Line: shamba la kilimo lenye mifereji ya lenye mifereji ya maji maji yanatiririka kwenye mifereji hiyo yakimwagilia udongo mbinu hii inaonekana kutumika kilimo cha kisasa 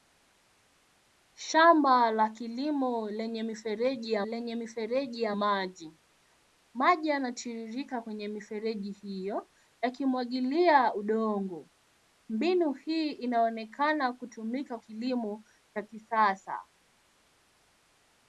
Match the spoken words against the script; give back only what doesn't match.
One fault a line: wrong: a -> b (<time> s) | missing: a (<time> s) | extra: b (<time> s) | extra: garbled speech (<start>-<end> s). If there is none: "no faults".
no faults